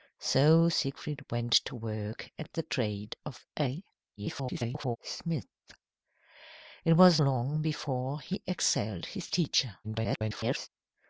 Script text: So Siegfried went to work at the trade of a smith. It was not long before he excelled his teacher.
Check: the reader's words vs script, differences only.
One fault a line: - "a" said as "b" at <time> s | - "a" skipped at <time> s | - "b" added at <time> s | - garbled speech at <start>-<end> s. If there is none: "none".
- garbled speech at 4.2-5.0 s
- "not" skipped at 7.2 s
- garbled speech at 9.8-10.7 s